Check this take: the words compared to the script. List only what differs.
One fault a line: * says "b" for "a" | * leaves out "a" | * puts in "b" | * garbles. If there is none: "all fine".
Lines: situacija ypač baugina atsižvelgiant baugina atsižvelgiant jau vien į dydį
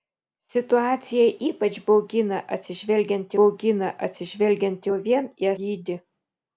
all fine